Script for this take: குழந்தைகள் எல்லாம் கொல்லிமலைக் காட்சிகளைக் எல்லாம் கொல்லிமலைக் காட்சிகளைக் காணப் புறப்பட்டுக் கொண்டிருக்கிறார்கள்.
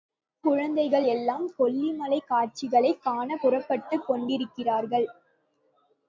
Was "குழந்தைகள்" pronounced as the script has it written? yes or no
yes